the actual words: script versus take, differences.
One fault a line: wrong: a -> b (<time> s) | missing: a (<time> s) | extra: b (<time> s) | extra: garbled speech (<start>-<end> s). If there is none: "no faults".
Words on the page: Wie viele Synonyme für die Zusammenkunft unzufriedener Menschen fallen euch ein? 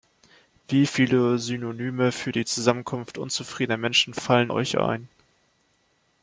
no faults